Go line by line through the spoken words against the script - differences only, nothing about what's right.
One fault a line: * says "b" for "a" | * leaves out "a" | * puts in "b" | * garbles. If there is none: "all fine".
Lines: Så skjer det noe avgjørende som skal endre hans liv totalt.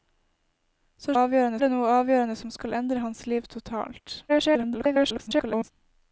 * says "avgjørende" for "skjer"
* garbles